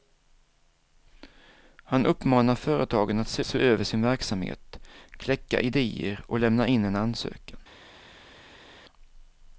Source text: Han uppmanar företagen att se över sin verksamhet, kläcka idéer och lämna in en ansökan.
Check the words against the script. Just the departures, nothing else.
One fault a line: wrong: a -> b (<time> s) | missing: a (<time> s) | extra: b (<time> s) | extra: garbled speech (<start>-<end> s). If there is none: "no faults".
extra: se (3.4 s)